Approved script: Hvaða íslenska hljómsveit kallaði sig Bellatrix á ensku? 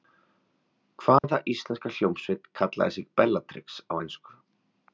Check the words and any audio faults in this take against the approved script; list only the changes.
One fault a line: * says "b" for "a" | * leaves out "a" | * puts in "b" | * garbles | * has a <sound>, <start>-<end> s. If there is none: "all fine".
* has a dropout, 1.2-1.2 s